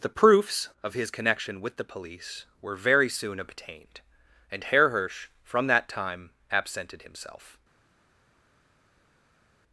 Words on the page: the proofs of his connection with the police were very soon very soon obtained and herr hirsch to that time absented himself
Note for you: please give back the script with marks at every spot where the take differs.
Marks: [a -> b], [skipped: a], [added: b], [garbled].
the proofs of his connection with the police were very soon [skipped: very soon] obtained and herr hirsch [to -> from] that time absented himself